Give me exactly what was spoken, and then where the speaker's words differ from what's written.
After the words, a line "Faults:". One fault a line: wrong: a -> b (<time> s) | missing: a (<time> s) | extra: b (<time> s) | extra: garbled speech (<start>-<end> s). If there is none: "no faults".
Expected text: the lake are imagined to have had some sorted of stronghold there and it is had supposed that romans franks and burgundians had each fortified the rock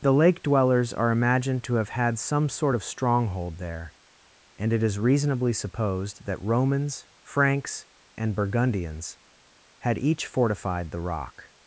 the lake dwellers are imagined to have had some sort of stronghold there and it is reasonably supposed that romans franks and burgundians had each fortified the rock
Faults:
extra: dwellers (0.4 s)
wrong: sorted -> sort (2.5 s)
wrong: had -> reasonably (5.0 s)